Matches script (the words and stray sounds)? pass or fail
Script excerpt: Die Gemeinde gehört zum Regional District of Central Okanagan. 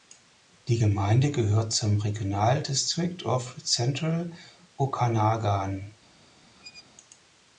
fail